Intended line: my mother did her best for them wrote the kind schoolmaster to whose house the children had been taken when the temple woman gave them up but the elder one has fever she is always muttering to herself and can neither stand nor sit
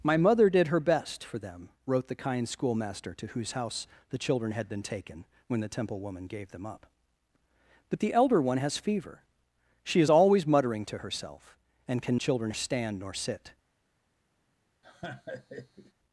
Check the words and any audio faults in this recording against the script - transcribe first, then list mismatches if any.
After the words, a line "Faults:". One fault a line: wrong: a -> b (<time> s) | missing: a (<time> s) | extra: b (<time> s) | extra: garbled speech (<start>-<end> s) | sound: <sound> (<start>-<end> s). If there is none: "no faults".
my mother did her best for them wrote the kind schoolmaster to whose house the children had been taken when the temple woman gave them up but the elder one has fever she is always muttering to herself and can children stand nor sit
Faults:
wrong: neither -> children (12.2 s)
sound: laugh (14.8-15.9 s)